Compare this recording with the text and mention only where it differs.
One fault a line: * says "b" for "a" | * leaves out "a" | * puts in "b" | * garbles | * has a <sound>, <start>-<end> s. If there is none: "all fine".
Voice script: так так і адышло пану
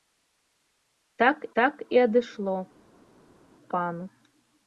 all fine